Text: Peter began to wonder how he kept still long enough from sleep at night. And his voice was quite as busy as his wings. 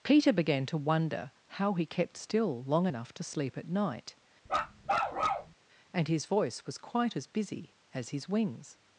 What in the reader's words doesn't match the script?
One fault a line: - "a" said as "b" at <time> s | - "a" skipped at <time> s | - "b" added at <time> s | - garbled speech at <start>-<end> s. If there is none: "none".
- "from" said as "to" at 3.1 s